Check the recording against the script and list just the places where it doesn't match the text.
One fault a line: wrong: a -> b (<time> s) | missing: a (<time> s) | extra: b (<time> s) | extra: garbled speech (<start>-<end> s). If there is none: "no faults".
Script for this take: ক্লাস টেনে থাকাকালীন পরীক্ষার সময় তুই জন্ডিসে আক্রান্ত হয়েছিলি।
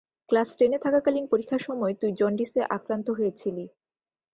no faults